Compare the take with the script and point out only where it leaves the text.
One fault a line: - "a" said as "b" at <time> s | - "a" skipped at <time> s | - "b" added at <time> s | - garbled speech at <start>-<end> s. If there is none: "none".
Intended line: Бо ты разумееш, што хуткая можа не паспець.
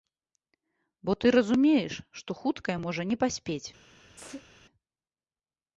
none